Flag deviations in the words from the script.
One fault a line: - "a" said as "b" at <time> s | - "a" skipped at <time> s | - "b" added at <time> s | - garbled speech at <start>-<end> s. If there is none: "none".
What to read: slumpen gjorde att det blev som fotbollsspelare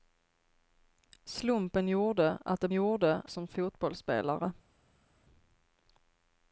- "blev" said as "gjorde" at 2.7 s